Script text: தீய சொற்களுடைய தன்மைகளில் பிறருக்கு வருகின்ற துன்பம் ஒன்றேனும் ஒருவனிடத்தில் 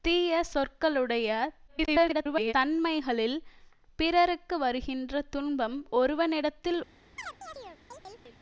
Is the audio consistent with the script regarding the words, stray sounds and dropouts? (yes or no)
no